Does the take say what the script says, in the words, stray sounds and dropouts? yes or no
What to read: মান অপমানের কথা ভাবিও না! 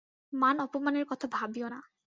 yes